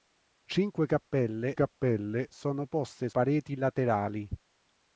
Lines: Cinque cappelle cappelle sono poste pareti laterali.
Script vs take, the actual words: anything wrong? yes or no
no